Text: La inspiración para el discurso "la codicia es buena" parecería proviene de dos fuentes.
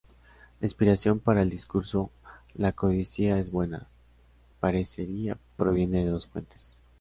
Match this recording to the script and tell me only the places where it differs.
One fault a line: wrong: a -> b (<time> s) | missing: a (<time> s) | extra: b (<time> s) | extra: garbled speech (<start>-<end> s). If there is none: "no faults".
no faults